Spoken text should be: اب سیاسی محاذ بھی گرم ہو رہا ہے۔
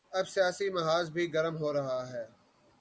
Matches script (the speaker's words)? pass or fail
pass